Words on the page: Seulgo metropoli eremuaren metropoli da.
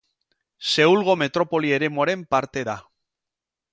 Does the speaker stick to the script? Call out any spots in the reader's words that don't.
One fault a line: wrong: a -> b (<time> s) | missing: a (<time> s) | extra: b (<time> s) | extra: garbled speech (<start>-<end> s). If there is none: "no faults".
wrong: metropoli -> parte (2.4 s)